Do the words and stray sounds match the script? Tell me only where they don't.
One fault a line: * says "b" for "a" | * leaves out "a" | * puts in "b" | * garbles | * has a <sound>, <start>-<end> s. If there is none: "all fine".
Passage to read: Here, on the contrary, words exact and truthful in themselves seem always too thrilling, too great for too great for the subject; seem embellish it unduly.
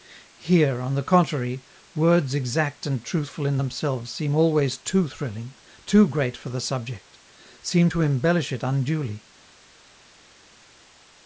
* leaves out "too great for"
* puts in "to"